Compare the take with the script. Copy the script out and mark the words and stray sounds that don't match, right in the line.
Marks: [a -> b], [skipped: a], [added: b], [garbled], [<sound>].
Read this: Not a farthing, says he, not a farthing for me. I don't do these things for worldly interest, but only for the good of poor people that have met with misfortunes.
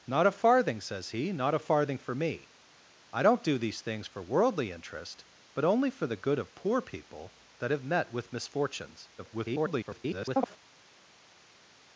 Not a farthing, says he, not a farthing for me. I don't do these things for worldly interest, but only for the good of poor people that have met with misfortunes. [garbled]